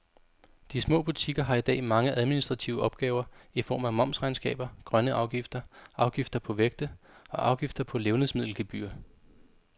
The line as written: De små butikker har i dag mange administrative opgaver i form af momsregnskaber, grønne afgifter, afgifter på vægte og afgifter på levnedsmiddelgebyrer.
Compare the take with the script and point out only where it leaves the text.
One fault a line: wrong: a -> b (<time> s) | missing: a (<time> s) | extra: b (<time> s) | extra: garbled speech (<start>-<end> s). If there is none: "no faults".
no faults